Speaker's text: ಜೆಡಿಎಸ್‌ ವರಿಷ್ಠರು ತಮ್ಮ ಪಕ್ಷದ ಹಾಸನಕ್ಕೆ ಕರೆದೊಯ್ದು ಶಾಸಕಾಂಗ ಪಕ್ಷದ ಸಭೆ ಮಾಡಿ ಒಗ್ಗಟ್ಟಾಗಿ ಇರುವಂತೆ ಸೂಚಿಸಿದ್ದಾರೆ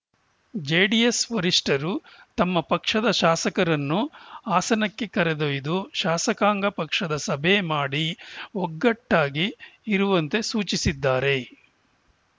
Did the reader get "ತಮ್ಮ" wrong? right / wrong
right